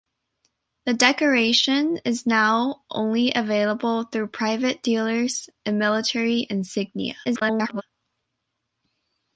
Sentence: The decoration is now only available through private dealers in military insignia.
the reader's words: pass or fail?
fail